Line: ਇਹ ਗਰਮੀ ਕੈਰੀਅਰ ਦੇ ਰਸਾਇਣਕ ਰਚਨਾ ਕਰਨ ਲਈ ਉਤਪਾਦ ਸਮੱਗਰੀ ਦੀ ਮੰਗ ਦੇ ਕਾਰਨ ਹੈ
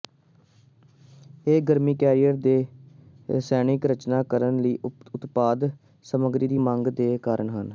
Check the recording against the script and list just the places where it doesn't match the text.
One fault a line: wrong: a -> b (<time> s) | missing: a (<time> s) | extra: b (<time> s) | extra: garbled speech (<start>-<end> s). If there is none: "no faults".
no faults